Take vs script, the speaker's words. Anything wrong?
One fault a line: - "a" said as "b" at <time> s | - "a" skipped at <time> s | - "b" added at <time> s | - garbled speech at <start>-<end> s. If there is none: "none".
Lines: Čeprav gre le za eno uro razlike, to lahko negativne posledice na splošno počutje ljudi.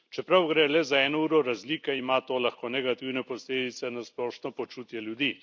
- "ima" added at 2.0 s